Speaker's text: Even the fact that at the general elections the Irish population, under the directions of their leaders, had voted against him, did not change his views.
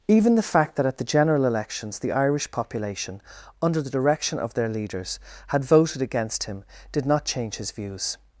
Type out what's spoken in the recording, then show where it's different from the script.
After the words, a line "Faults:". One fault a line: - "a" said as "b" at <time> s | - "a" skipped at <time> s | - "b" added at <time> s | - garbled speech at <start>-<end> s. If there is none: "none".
Even the fact that at the general elections the Irish population, under the direction of their leaders, had voted against him, did not change his views.
Faults:
- "directions" said as "direction" at 3.9 s